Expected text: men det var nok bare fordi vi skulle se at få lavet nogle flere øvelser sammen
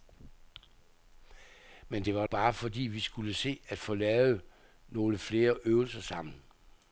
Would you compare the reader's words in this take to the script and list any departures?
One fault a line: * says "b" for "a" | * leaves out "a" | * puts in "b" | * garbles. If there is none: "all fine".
* leaves out "nok"